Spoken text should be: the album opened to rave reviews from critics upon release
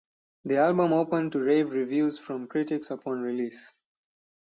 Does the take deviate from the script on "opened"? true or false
false